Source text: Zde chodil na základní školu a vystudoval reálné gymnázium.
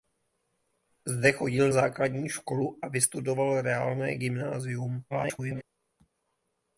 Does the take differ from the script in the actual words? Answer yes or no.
yes